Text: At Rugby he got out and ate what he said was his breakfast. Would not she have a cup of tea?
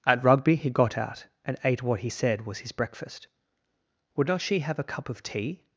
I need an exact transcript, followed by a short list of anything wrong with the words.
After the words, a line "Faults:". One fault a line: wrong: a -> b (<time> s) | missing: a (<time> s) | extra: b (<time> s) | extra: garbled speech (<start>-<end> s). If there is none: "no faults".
At Rugby he got out and ate what he said was his breakfast. Would not she have a cup of tea?
Faults:
no faults